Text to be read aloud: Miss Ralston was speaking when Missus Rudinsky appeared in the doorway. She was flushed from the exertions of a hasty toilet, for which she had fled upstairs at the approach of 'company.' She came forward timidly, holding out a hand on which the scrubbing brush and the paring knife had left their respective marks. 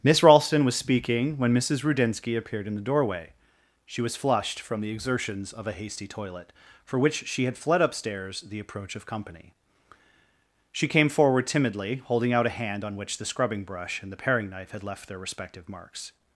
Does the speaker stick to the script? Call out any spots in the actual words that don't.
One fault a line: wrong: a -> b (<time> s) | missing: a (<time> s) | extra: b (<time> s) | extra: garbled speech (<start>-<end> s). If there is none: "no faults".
missing: at (8.4 s)